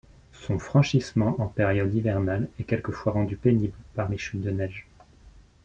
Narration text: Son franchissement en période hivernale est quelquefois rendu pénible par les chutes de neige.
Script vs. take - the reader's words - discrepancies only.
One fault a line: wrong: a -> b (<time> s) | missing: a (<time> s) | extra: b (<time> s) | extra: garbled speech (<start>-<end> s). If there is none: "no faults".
no faults